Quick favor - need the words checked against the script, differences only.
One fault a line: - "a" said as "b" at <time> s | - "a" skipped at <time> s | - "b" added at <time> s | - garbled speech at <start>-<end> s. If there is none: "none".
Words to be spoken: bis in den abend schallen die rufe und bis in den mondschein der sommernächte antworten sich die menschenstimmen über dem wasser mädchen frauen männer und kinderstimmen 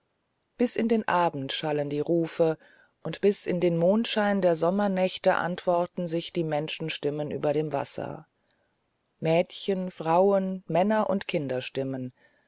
none